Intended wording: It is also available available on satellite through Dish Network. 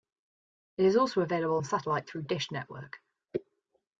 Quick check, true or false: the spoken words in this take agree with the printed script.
false